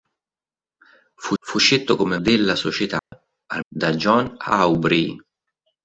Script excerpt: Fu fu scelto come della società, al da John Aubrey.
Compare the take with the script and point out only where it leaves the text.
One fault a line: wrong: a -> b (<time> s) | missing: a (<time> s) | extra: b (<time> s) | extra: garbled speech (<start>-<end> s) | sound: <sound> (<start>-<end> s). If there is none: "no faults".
sound: dropout (3.0-3.1 s)